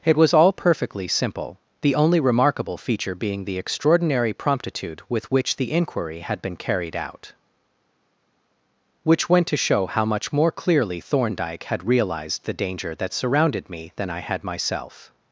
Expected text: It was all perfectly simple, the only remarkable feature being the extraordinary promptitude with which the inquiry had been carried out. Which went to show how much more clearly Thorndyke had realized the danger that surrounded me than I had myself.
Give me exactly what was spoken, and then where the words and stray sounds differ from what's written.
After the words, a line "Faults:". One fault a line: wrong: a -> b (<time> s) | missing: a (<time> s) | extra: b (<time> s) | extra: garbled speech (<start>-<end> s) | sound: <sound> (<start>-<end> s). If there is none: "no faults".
It was all perfectly simple, the only remarkable feature being the extraordinary promptitude with which the inquiry had been carried out. Which went to show how much more clearly Thorndyke had realized the danger that surrounded me than I had myself.
Faults:
no faults